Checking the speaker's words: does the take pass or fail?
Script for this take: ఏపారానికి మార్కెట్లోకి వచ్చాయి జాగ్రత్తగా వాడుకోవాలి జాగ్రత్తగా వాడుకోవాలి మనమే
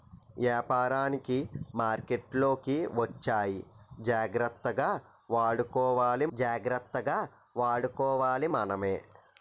pass